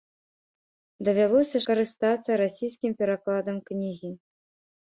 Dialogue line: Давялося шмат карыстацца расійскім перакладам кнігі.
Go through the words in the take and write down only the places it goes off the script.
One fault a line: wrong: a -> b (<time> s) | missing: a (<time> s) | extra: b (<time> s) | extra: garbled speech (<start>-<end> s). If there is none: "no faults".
missing: шмат (1.6 s)